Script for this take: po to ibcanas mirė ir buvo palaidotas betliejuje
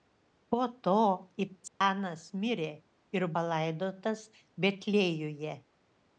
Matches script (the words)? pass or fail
fail